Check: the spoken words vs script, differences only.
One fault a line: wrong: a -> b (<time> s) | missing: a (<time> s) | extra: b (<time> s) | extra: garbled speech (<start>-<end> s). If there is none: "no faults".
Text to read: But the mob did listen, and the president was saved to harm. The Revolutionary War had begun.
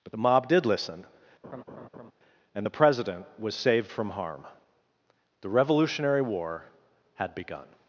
wrong: to -> from (3.9 s)